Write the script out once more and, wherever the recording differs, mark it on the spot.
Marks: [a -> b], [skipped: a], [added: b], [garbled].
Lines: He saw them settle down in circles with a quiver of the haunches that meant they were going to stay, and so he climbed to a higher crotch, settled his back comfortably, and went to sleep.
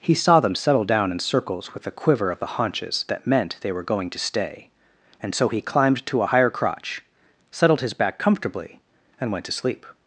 He saw them settle down in circles with a quiver of the haunches that meant they were going to stay, and so he climbed to a higher crotch, settled his back comfortably, and went to sleep.